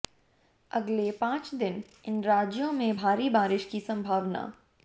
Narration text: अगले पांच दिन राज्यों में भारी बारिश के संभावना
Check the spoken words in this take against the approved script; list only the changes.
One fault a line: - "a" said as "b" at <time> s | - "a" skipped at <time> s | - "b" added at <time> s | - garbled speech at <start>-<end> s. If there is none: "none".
- "इन" added at 2.0 s
- "के" said as "की" at 3.6 s